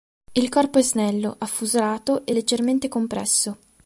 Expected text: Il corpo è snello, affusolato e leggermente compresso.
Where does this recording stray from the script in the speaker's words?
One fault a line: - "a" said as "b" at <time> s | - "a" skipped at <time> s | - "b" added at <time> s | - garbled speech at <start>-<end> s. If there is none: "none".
none